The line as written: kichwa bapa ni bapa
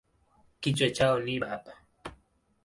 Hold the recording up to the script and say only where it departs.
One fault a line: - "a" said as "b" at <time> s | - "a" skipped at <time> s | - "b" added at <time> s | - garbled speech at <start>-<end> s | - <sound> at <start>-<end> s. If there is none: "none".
- "bapa" said as "chao" at 0.9 s